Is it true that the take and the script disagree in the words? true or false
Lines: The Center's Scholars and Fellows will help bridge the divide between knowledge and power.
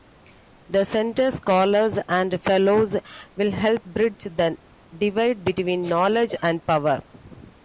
false